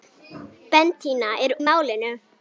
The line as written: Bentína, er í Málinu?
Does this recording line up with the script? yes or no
yes